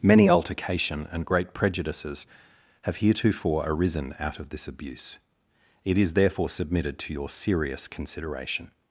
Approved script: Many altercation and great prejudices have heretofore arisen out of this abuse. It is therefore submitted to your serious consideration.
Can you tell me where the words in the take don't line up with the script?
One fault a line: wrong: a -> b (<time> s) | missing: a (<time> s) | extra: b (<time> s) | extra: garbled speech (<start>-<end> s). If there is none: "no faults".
no faults